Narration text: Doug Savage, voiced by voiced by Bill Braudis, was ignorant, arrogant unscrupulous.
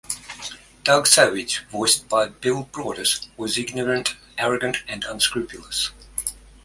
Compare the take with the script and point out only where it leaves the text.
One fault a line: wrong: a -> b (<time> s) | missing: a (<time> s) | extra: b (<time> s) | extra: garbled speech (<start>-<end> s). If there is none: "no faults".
missing: voiced by (2.3 s)
extra: and (4.9 s)